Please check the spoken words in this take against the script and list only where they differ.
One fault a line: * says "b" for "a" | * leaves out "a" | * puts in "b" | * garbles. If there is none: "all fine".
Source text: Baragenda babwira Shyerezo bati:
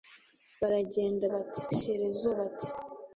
* says "bati" for "babwira"